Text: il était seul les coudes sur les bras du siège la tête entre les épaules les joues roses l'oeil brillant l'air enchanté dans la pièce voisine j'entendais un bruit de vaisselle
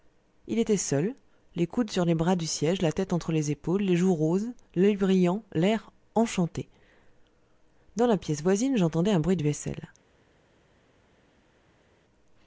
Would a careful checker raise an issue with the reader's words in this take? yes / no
no